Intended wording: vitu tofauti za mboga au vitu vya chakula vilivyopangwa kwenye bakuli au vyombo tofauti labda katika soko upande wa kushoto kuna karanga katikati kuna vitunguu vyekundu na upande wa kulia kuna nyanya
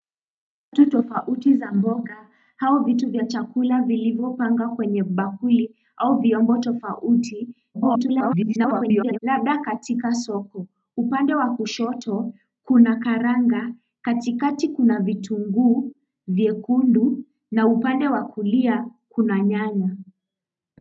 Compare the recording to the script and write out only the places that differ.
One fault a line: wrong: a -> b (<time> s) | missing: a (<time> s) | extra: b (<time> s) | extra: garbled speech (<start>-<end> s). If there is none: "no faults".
extra: garbled speech (7.7-9.2 s)